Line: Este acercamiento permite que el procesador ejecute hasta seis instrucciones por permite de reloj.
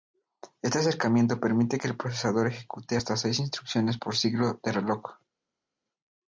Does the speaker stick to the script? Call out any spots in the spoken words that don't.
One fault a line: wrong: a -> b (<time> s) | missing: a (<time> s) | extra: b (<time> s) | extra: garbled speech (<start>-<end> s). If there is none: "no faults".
wrong: permite -> ciclo (4.2 s)